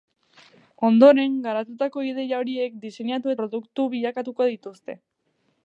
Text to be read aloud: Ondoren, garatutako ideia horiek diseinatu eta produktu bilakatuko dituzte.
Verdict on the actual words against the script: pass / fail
fail